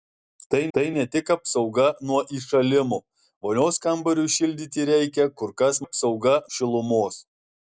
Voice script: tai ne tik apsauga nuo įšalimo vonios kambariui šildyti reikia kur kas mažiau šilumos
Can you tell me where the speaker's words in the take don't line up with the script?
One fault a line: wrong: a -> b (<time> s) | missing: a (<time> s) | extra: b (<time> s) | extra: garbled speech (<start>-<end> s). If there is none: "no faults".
extra: tai (0.7 s)
wrong: mažiau -> apsauga (5.8 s)